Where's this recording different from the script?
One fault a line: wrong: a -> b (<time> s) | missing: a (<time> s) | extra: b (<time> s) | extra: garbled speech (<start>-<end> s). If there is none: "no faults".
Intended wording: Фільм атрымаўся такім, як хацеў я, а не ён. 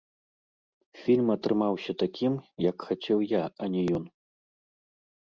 no faults